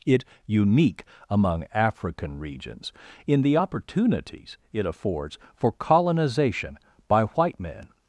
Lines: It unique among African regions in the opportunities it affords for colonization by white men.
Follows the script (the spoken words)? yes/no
yes